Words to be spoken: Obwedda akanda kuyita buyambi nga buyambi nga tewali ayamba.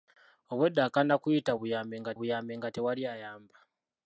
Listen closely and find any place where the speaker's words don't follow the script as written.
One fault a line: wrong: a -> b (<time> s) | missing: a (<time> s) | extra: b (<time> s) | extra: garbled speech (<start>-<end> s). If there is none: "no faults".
no faults